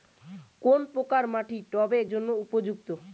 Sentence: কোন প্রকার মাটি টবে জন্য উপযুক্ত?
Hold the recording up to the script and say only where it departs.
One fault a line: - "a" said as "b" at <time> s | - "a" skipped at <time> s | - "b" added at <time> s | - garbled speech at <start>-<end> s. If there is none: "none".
none